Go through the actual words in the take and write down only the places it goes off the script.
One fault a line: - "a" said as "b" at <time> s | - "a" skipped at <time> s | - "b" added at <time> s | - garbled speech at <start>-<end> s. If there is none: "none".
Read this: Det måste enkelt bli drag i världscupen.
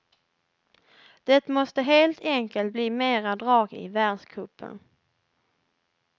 - "helt" added at 1.8 s
- "mera" added at 2.9 s